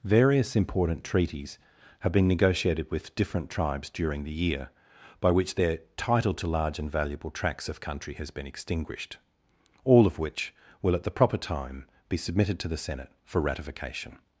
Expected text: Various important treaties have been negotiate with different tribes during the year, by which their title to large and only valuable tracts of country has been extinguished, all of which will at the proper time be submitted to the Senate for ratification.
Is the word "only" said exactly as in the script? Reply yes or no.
no